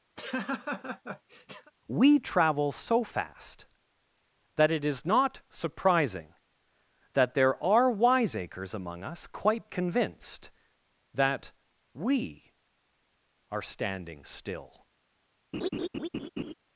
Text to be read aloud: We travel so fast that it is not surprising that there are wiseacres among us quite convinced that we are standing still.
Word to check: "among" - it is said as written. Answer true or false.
true